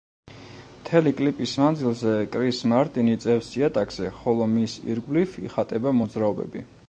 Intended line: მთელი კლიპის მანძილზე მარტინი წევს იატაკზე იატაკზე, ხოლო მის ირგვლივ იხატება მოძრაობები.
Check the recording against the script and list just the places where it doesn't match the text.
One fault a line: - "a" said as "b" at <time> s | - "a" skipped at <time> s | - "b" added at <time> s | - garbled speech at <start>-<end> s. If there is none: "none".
- "კრის" added at 2.3 s
- "იატაკზე" skipped at 4.1 s